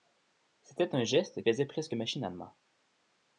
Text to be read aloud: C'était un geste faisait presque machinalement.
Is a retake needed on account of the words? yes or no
no